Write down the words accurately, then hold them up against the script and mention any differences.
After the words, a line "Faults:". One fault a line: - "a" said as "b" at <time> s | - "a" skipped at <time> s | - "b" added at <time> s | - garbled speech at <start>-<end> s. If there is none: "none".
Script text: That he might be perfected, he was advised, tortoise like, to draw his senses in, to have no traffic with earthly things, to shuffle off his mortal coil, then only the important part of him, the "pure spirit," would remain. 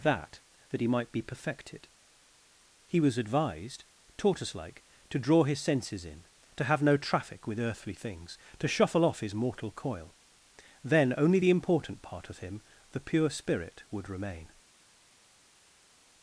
That that he might be perfected, he was advised, tortoise like, to draw his senses in, to have no traffic with earthly things, to shuffle off his mortal coil, then only the important part of him, the "pure spirit," would remain.
Faults:
- "that" added at 0.7 s